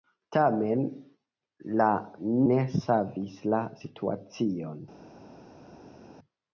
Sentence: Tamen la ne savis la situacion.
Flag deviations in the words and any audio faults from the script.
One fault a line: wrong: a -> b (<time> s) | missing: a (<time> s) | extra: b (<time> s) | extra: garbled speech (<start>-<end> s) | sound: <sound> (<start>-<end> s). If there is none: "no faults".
no faults